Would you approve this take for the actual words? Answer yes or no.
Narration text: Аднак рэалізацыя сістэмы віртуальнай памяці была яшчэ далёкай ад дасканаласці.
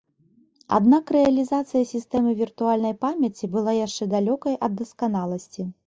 yes